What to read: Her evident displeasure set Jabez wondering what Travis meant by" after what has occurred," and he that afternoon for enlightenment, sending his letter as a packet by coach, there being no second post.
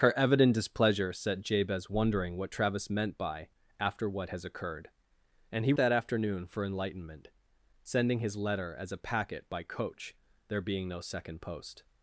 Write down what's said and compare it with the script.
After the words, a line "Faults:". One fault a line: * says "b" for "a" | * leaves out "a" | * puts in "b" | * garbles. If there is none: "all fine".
Her evident displeasure set Jabez wondering what Travis meant by" after what has occurred," and he that afternoon for enlightenment, sending his letter as a packet by coach, there being no second post.
Faults:
all fine